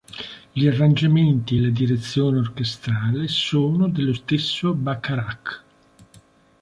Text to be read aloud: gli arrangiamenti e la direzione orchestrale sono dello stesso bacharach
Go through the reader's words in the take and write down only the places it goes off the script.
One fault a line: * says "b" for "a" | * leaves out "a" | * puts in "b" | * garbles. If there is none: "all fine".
all fine